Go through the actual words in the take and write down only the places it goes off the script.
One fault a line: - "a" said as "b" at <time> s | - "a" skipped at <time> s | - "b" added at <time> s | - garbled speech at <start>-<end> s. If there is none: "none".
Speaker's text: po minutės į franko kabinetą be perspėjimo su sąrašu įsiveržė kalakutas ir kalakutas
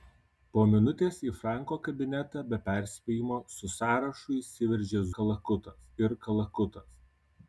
none